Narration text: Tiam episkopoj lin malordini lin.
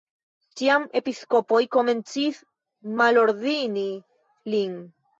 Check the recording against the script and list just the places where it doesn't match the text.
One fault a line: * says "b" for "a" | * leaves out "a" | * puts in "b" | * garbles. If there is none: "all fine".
* says "komencis" for "lin"